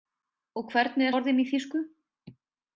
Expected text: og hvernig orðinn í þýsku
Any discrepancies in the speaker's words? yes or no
no